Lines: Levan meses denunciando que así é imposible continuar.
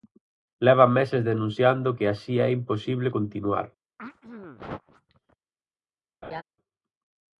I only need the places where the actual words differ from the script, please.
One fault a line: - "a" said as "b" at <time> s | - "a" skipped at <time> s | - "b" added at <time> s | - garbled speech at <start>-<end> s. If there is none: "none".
none